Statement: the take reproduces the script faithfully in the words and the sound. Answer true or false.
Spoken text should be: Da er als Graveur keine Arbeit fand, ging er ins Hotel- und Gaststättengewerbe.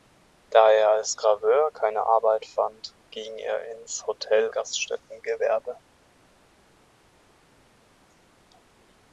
false